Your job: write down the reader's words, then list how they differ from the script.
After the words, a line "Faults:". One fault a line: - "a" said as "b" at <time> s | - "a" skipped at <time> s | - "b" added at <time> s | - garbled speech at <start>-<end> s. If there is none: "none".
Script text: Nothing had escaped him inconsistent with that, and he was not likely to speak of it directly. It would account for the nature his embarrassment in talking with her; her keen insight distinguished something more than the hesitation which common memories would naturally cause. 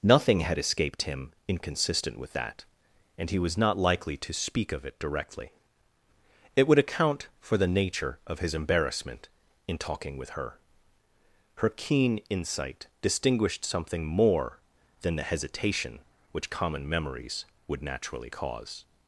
Nothing had escaped him inconsistent with that, and he was not likely to speak of it directly. It would account for the nature of his embarrassment in talking with her; her keen insight distinguished something more than the hesitation which common memories would naturally cause.
Faults:
- "of" added at 8.2 s